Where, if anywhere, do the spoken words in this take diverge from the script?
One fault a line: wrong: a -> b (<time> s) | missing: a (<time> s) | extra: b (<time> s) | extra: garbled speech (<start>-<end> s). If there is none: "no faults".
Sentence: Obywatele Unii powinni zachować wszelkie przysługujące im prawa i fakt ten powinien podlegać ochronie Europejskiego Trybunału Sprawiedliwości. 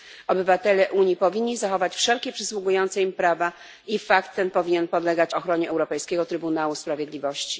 no faults